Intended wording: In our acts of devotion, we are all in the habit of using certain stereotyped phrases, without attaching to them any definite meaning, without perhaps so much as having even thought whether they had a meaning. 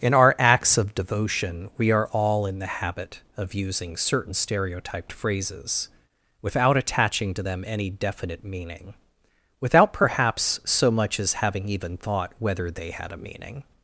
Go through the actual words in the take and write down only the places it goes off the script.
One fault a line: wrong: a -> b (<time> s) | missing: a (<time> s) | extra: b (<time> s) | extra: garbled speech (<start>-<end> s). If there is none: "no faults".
no faults